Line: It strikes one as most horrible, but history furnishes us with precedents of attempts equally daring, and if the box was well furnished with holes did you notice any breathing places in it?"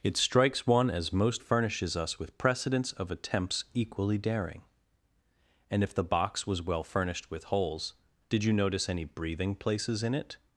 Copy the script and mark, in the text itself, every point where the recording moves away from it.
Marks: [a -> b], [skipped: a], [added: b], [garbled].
It strikes one as most [skipped: horrible, but history] furnishes us with precedents of attempts equally daring, and if the box was well furnished with holes did you notice any breathing places in it?"